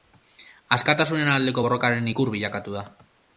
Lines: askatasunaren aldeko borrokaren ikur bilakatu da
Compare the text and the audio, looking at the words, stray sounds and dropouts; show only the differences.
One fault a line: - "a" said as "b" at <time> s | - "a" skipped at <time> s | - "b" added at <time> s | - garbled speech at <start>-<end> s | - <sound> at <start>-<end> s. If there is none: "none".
none